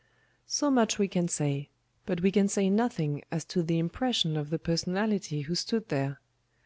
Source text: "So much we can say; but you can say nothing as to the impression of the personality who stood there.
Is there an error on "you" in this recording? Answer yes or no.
yes